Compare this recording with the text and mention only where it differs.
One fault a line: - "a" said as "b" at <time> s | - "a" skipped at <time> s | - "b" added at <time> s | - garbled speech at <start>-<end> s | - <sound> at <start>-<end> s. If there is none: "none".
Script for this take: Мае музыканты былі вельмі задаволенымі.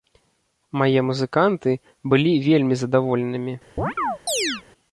- chirp at 3.8-4.6 s